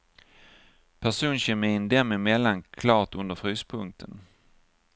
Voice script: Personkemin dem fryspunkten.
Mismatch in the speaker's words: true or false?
true